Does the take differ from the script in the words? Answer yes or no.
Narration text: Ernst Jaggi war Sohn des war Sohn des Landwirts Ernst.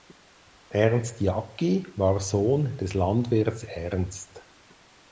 yes